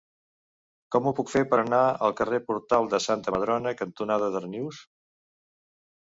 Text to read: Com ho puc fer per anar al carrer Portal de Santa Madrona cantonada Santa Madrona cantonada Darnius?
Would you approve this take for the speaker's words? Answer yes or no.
no